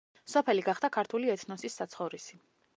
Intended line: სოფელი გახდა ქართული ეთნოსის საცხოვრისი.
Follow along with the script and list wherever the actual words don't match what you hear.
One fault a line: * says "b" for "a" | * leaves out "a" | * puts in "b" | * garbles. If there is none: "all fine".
all fine